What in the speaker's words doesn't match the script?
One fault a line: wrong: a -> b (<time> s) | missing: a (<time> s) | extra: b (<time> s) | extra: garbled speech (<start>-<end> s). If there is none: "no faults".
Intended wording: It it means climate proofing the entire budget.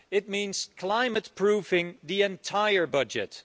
missing: it (0.3 s)